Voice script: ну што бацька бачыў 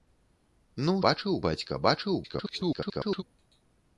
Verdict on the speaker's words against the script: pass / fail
fail